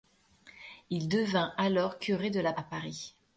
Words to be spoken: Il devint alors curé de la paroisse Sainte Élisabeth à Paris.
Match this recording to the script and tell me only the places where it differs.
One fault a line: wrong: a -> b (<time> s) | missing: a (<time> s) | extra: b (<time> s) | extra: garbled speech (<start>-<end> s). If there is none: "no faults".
missing: paroisse Sainte Élisabeth (2.5 s)